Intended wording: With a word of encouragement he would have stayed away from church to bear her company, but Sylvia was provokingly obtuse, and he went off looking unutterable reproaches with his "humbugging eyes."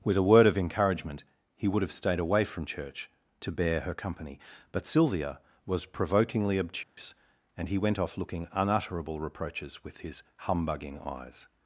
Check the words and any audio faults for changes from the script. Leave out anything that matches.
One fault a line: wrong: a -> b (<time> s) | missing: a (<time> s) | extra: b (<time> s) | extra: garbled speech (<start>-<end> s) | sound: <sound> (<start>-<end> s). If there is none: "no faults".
sound: dropout (6.8-7.0 s)